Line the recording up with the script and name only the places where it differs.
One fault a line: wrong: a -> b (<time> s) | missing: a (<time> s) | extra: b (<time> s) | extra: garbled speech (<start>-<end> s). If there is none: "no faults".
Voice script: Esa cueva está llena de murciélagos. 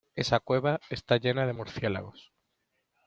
no faults